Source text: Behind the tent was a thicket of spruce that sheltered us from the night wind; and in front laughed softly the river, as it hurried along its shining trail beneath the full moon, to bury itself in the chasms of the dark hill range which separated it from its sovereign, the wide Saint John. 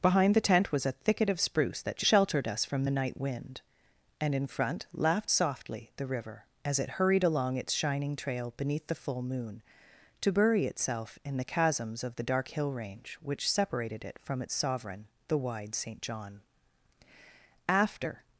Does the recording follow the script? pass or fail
fail